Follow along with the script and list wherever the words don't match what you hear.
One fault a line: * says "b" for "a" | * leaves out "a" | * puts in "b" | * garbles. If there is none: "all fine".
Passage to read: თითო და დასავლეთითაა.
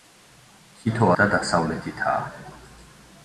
all fine